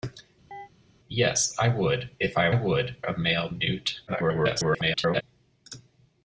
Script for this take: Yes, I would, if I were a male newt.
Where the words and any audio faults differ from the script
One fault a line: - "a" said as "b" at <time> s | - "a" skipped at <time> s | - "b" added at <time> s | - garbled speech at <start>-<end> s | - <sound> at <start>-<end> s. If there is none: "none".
- chirp at 0.5-0.7 s
- "were" said as "would" at 2.5 s
- garbled speech at 4.1-5.2 s